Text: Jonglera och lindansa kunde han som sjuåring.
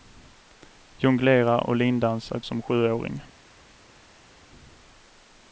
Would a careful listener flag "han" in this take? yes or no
yes